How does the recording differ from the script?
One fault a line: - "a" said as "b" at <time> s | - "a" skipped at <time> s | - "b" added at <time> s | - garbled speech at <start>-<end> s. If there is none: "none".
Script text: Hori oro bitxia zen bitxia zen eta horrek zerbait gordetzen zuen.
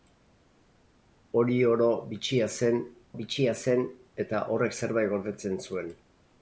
none